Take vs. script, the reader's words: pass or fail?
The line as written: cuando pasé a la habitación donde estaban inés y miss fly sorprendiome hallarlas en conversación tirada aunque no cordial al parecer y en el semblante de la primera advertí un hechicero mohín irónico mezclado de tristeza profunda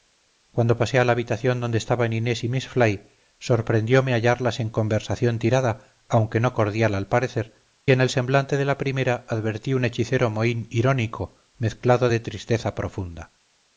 fail